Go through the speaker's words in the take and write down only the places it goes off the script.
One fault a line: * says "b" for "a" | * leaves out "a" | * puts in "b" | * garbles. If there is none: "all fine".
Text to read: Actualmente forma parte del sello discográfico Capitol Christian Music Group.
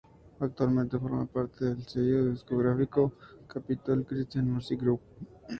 all fine